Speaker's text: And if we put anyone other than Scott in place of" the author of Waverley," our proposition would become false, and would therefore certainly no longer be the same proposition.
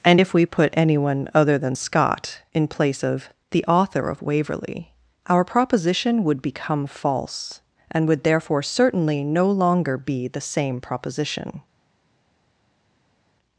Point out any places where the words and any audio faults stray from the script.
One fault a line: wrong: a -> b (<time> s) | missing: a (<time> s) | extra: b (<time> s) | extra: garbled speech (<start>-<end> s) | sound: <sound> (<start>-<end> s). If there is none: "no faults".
no faults